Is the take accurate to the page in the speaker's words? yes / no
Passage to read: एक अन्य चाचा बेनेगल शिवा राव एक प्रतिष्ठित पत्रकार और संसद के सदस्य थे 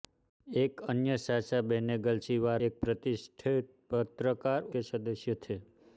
no